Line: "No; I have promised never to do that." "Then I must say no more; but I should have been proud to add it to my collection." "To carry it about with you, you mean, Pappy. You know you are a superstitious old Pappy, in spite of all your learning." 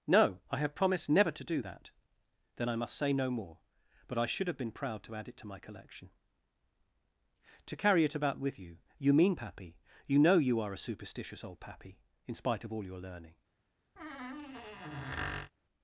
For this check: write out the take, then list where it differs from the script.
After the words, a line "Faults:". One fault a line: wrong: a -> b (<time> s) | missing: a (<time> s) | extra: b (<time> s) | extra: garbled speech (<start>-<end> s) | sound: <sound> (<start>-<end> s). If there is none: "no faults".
"No; I have promised never to do that." "Then I must say no more; but I should have been proud to add it to my collection." "To carry it about with you, you mean, Pappy. You know you are a superstitious old Pappy, in spite of all your learning."
Faults:
sound: squeak (14.0-15.5 s)